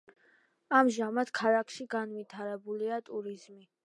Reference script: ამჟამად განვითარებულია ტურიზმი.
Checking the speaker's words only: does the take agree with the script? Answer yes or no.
no